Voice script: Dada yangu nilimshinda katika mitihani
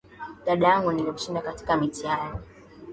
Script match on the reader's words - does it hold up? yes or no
yes